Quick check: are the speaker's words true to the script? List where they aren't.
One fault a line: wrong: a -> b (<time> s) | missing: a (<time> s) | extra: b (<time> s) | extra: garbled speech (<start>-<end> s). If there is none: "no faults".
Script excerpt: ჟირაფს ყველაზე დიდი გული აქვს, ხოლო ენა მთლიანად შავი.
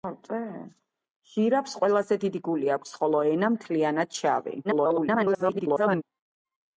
extra: garbled speech (4.6-6.0 s)